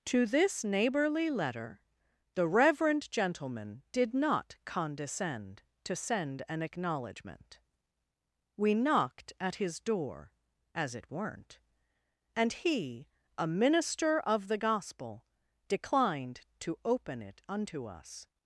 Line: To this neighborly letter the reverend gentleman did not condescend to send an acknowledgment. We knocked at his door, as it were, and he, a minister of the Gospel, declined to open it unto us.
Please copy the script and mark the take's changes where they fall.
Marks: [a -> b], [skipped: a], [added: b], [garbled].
To this neighborly letter the reverend gentleman did not condescend to send an acknowledgment. We knocked at his door, as it [were, -> weren't] and he, a minister of the Gospel, declined to open it unto us.